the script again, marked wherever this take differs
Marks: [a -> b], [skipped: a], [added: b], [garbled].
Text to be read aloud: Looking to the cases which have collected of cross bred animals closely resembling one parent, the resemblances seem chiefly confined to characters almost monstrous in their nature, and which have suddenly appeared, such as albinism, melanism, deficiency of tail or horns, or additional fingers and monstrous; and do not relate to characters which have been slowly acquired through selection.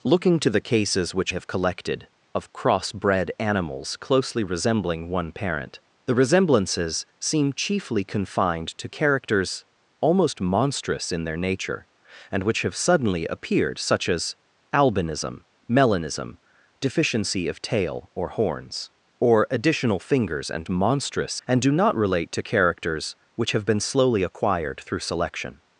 Looking to the cases which have collected of cross bred animals closely resembling one parent, the resemblances seem chiefly confined to characters almost monstrous in their nature, and which have suddenly appeared, such as albinism, melanism, deficiency of tail or horns, or additional fingers and monstrous; and do not relate to characters which have been slowly acquired through selection.